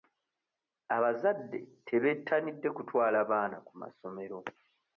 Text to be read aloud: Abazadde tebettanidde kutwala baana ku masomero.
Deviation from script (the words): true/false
false